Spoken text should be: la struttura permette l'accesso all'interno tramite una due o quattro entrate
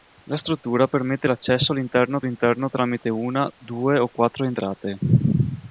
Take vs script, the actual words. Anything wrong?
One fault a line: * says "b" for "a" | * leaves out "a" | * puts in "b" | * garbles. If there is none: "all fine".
* puts in "all'interno"